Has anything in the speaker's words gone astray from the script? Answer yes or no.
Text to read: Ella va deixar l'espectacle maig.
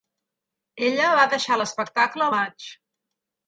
no